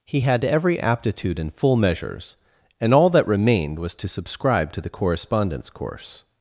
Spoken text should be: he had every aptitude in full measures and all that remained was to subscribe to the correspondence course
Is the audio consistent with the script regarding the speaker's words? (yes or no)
yes